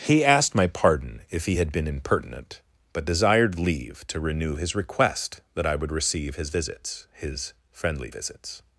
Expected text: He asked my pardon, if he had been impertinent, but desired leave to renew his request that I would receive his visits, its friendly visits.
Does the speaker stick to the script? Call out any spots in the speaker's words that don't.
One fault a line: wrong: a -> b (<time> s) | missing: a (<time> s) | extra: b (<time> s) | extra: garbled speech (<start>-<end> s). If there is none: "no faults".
wrong: its -> his (7.1 s)